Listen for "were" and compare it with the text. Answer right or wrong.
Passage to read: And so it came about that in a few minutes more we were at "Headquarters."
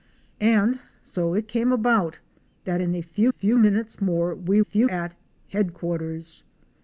wrong